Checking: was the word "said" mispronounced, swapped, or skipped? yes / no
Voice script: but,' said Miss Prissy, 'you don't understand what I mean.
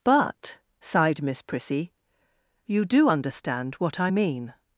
yes